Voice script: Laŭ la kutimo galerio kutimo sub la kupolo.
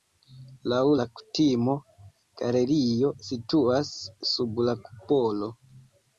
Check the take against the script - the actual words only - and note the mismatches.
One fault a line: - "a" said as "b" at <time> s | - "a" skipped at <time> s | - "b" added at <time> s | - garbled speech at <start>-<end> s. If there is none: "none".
- "kutimo" said as "situas" at 3.3 s